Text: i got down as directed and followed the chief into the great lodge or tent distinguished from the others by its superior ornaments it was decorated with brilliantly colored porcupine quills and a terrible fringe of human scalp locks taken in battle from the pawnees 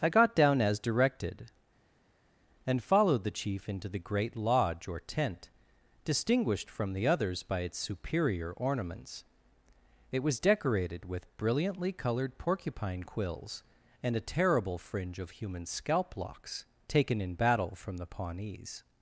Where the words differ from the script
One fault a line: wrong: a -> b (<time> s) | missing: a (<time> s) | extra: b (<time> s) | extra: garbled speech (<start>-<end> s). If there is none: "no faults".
no faults